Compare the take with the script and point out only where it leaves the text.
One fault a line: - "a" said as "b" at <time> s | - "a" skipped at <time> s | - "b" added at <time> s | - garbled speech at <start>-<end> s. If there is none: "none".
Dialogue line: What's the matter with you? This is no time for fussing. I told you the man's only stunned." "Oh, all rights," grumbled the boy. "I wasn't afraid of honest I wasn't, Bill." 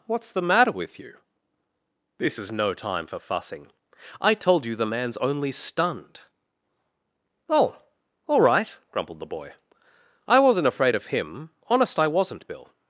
- "rights" said as "right" at 8.4 s
- "him" added at 11.1 s